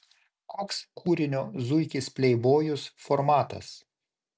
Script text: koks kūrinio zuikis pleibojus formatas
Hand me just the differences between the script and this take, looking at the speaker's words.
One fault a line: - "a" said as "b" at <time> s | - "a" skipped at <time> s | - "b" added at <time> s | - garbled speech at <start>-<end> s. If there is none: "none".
none